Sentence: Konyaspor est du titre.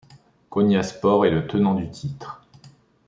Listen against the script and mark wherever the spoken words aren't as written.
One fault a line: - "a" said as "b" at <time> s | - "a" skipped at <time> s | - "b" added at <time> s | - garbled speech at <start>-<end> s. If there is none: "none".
- "le tenant" added at 1.3 s